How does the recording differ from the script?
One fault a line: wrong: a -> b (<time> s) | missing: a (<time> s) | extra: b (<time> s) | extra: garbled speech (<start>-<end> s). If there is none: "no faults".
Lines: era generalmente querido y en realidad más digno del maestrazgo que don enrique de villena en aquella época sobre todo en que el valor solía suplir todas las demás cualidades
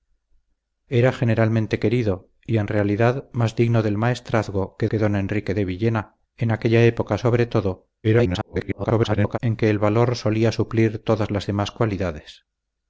extra: que (4.9 s)
extra: garbled speech (8.0-9.4 s)